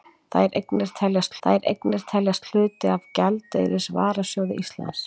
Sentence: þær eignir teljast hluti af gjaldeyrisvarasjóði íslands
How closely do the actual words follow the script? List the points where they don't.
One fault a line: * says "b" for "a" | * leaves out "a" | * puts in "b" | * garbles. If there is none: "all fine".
* puts in "þær eignir teljast"